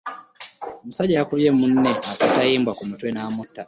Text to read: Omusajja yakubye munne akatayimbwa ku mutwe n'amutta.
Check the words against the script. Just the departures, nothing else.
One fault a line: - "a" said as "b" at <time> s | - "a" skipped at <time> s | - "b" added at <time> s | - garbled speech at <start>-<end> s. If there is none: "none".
none